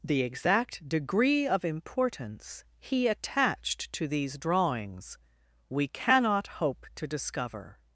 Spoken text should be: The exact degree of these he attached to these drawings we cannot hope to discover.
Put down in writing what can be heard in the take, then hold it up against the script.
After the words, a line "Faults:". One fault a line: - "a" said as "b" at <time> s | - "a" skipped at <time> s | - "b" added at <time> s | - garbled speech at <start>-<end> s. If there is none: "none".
The exact degree of importance he attached to these drawings we cannot hope to discover.
Faults:
- "these" said as "importance" at 1.6 s